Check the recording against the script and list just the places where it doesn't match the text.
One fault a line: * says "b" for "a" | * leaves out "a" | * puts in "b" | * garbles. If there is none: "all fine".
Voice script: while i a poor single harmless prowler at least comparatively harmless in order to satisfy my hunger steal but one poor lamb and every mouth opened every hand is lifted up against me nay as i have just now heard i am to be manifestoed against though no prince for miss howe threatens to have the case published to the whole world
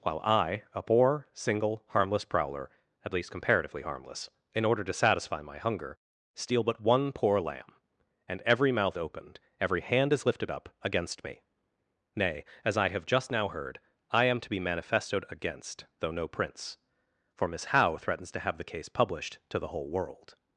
all fine